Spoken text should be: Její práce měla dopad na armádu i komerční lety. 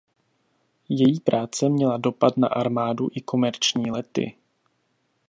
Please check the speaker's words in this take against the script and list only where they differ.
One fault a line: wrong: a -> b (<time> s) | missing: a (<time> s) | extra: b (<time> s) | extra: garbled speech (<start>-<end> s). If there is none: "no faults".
no faults